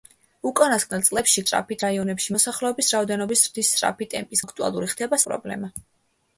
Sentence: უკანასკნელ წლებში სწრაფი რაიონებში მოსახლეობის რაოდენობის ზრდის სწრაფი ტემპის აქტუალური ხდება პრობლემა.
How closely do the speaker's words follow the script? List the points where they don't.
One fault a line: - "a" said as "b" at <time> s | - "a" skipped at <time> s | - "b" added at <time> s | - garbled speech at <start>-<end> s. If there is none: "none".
none